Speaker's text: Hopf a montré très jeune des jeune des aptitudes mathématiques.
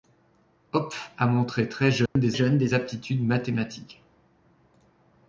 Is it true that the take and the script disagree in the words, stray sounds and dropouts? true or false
true